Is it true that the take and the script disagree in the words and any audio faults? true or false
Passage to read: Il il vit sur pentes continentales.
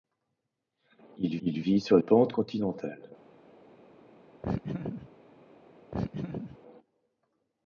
true